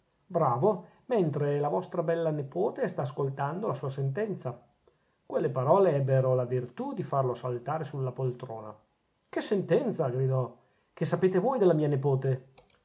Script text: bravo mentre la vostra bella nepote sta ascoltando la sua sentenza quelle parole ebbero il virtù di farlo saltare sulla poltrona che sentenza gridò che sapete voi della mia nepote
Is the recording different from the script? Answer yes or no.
yes